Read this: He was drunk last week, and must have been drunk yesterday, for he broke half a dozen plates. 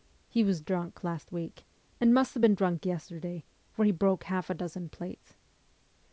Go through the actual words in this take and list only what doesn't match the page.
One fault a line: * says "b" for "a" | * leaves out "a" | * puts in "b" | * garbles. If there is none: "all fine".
all fine